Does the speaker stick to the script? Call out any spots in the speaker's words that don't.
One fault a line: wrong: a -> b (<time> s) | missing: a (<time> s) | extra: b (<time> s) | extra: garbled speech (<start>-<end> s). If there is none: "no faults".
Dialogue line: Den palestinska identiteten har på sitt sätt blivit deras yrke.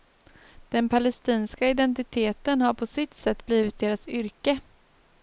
no faults